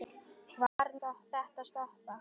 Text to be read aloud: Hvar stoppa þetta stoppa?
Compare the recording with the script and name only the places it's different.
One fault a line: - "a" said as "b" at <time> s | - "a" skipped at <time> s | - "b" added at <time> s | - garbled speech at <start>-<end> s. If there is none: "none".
none